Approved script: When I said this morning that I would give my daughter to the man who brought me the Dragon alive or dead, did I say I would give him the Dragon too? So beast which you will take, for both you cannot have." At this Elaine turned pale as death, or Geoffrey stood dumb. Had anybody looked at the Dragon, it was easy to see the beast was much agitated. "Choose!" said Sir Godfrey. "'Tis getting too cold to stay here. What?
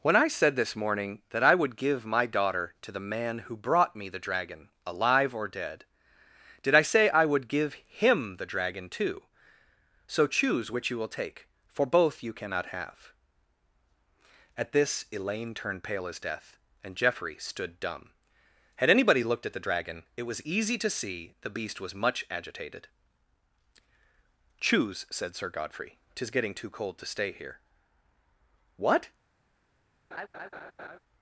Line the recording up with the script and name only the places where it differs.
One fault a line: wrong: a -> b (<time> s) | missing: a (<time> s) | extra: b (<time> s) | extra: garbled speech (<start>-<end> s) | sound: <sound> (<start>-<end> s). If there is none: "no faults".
wrong: beast -> choose (10.2 s)
wrong: or -> and (16.8 s)
sound: laugh (30.1-31.0 s)